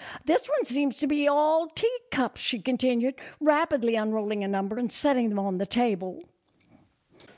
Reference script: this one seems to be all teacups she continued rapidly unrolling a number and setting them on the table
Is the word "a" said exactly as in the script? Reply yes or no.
yes